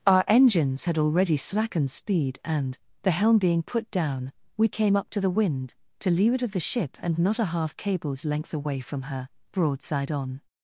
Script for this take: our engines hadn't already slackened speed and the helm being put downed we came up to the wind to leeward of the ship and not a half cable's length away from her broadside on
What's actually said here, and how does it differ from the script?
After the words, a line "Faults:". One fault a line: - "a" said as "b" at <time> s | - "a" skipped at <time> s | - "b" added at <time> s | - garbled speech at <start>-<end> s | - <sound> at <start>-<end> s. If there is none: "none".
our engines had already slackened speed and the helm being put down we came up to the wind to leeward of the ship and not a half cable's length away from her broadside on
Faults:
- "hadn't" said as "had" at 0.8 s
- "downed" said as "down" at 3.9 s